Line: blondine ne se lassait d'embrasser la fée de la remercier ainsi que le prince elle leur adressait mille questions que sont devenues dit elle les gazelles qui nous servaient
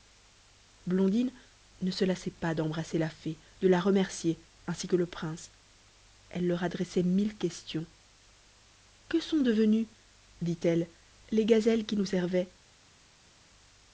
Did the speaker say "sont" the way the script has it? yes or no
yes